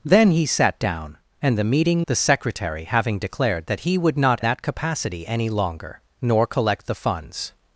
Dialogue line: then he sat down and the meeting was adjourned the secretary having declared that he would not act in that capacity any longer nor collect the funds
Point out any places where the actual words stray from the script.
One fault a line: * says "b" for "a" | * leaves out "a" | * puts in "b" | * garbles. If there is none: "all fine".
* leaves out "was adjourned"
* leaves out "act in"